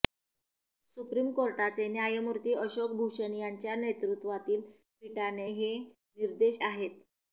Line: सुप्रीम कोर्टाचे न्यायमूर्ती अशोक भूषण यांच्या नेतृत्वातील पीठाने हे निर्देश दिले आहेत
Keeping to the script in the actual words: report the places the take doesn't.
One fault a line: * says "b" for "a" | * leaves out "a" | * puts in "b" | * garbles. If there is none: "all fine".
* leaves out "दिले"